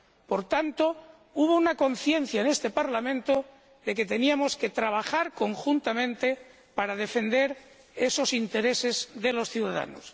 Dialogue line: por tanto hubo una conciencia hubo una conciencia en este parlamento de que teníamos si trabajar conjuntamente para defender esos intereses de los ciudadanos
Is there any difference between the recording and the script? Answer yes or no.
yes